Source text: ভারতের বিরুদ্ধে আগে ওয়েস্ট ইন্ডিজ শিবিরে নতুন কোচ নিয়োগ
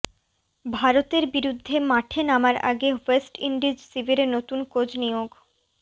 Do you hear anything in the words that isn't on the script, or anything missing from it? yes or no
yes